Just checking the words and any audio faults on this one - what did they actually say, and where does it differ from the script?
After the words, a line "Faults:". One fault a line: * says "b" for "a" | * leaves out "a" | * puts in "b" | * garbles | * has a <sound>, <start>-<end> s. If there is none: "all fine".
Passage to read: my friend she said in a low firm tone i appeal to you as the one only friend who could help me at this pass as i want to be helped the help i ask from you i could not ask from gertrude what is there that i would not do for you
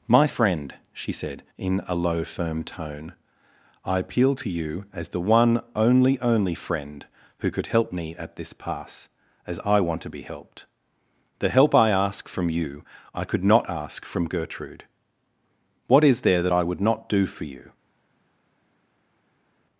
my friend she said in a low firm tone i appeal to you as the one only only friend who could help me at this pass as i want to be helped the help i ask from you i could not ask from gertrude what is there that i would not do for you
Faults:
* puts in "only"